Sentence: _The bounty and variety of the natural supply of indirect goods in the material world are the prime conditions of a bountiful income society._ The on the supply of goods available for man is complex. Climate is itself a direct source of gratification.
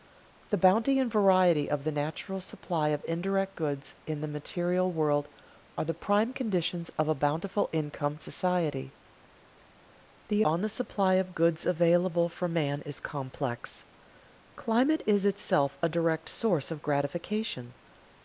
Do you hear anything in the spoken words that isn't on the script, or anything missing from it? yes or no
no